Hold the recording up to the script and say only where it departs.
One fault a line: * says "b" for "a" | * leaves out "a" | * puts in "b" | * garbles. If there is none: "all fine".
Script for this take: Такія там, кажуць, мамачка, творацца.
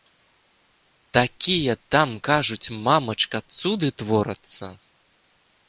* puts in "цуды"